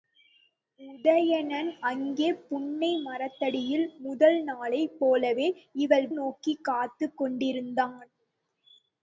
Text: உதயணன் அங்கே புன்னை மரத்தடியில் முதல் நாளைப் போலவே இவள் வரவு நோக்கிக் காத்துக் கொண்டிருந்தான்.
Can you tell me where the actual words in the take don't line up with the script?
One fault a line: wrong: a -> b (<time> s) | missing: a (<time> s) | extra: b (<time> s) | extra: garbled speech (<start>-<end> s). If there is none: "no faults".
missing: வரவு (6.1 s)